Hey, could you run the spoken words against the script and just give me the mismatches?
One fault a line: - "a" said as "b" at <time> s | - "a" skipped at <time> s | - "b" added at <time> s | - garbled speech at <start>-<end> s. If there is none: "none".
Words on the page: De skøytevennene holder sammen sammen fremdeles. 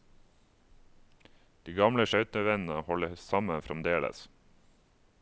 - "gamle" added at 1.8 s
- "sammen" skipped at 3.7 s